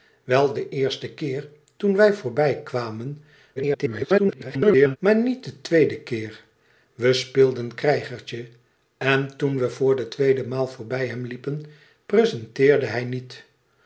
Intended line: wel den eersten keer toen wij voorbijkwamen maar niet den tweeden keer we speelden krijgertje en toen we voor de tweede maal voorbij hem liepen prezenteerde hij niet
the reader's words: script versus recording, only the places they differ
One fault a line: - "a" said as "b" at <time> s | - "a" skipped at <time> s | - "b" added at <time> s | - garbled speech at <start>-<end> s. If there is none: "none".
- garbled speech at 3.6-5.0 s